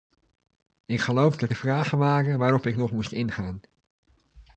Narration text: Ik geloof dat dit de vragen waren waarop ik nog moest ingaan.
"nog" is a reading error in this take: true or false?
false